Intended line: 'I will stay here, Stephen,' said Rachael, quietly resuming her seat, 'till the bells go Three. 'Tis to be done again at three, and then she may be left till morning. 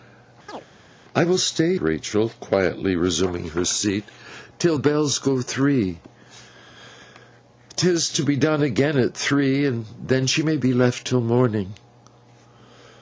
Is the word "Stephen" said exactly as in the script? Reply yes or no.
no